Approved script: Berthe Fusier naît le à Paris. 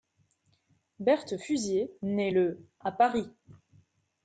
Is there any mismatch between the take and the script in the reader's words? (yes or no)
no